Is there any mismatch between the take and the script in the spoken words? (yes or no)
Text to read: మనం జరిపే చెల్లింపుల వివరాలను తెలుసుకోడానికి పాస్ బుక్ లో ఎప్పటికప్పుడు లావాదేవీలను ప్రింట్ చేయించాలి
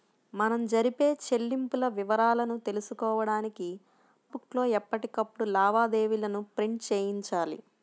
yes